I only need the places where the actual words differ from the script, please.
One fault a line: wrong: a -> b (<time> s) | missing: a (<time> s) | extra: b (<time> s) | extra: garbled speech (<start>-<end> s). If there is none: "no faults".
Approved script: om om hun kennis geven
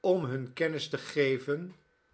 missing: om (0.2 s)
extra: te (0.9 s)